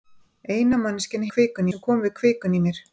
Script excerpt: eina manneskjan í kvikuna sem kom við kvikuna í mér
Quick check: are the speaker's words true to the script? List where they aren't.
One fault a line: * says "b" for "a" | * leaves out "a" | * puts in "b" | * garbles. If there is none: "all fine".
all fine